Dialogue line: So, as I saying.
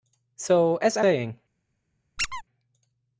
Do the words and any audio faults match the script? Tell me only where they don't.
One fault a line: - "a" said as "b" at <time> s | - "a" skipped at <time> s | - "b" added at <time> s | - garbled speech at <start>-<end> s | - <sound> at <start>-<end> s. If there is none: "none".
- squeak at 2.2-2.4 s